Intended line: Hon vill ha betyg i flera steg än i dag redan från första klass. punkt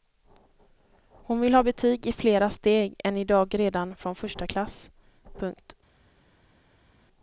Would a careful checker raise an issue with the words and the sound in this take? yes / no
no